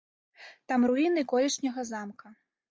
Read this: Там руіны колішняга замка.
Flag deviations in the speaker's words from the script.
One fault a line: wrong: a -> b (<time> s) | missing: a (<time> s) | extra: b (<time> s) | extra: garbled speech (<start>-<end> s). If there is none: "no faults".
no faults